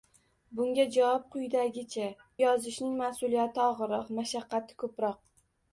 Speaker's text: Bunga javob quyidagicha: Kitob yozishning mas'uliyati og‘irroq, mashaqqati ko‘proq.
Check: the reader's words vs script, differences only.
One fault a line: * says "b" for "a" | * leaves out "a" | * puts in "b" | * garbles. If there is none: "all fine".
* leaves out "Kitob"